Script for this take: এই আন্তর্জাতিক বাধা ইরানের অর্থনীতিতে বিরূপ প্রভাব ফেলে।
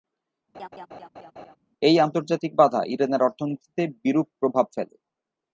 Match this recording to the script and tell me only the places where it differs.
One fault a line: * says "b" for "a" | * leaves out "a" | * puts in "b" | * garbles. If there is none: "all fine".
all fine